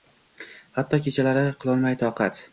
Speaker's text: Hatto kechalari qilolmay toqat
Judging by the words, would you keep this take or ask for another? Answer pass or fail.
pass